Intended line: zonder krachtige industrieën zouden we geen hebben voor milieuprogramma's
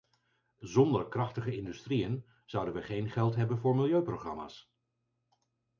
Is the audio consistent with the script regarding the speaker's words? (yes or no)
no